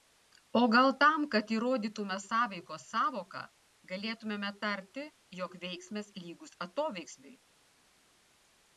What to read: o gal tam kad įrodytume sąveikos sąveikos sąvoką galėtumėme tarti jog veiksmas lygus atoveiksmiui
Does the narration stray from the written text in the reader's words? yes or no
yes